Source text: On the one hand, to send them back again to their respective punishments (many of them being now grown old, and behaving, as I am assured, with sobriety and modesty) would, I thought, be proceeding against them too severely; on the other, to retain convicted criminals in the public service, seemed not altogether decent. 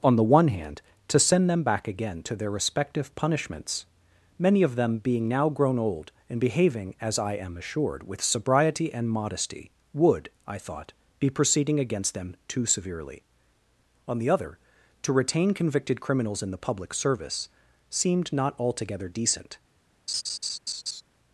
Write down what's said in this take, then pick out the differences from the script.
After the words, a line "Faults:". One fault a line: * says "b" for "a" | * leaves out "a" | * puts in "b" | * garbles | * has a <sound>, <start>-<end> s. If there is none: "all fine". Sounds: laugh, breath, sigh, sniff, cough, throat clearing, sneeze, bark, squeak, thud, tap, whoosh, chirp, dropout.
On the one hand, to send them back again to their respective punishments (many of them being now grown old, and behaving, as I am assured, with sobriety and modesty) would, I thought, be proceeding against them too severely; on the other, to retain convicted criminals in the public service, seemed not altogether decent.
Faults:
* has a laugh, 20.1-21.0 s